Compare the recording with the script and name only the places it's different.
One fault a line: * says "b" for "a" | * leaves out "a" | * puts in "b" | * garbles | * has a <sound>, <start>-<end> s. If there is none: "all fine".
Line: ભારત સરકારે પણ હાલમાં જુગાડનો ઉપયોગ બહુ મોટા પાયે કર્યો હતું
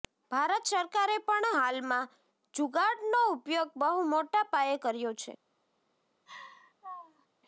* says "છે" for "હતું"
* has a laugh, 6.3-7.3 s